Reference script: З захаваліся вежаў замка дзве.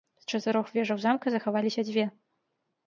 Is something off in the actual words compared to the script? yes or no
yes